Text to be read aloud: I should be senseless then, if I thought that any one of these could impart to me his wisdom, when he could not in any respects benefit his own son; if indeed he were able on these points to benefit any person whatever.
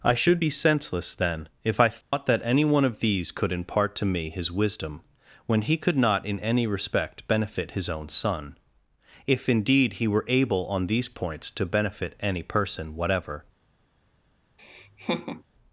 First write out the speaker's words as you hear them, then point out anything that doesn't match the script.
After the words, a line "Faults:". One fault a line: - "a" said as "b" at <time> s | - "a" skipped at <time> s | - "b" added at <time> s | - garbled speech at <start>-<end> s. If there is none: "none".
I should be senseless then, if I thought that any one of these could impart to me his wisdom, when he could not in any respect benefit his own son; if indeed he were able on these points to benefit any person whatever.
Faults:
- "respects" said as "respect" at 6.7 s